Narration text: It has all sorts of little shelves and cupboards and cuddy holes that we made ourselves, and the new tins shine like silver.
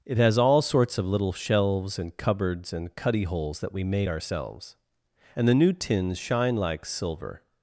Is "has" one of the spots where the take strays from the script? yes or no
no